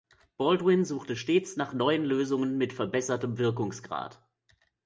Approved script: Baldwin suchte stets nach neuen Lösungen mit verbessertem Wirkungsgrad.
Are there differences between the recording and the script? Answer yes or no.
no